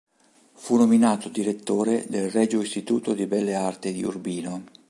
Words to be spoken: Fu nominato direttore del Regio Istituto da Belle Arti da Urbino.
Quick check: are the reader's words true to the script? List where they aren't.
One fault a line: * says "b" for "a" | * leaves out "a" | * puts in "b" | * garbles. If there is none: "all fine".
* says "di" for "da"
* says "di" for "da"